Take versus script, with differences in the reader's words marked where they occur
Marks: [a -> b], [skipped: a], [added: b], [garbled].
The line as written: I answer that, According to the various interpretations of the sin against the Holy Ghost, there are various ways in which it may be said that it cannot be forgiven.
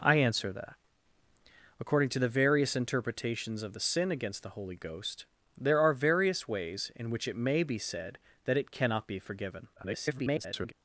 I answer that, According to the various interpretations of the sin against the Holy Ghost, there are various ways in which it may be said that it cannot be forgiven. [garbled]